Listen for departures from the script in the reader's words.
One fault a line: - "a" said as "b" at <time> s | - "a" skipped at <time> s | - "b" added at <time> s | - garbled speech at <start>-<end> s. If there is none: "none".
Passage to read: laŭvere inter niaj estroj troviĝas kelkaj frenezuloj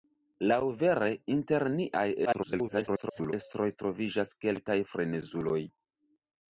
- garbled speech at 2.2-3.3 s